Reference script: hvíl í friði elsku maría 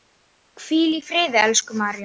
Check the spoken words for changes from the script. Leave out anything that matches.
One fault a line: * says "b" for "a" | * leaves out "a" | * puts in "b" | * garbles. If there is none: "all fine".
all fine